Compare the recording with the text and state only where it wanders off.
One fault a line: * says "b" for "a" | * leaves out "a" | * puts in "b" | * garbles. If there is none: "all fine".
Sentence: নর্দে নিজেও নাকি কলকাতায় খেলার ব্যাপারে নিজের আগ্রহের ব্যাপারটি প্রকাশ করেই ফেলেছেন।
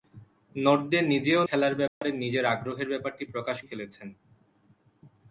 * leaves out "নাকি কলকাতায়"
* leaves out "করেই"